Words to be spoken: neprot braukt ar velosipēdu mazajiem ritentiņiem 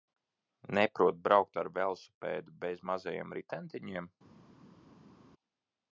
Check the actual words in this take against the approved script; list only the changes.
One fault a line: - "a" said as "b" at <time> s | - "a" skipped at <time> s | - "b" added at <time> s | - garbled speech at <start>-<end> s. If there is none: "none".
- "bez" added at 2.6 s